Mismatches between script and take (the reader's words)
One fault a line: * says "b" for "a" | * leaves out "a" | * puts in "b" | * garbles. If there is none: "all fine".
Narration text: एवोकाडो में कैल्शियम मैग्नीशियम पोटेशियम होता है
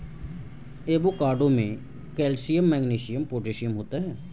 all fine